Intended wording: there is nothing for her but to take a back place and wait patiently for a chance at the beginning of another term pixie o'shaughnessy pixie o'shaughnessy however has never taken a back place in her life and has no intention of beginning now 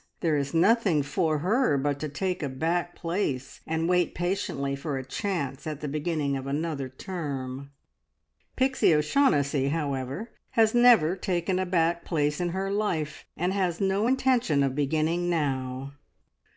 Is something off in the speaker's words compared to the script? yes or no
yes